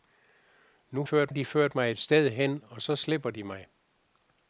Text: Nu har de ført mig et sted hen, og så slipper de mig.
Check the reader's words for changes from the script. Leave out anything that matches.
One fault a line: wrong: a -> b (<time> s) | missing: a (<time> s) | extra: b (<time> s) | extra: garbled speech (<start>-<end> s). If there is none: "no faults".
wrong: har -> ført (1.0 s)